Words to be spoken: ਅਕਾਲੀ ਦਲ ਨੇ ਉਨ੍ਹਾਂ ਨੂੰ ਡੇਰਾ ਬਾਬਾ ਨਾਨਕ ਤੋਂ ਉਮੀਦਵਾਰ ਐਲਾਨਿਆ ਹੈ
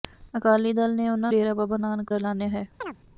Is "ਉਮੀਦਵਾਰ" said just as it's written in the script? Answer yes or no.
no